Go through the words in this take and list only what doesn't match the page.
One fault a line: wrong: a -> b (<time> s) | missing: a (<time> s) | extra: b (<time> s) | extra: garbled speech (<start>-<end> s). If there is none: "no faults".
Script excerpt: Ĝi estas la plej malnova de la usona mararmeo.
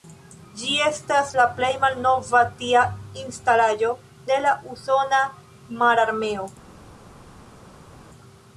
extra: tia instalaĵo (2.6 s)